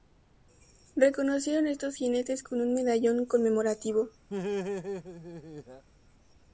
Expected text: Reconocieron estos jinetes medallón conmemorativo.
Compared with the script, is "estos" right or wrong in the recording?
right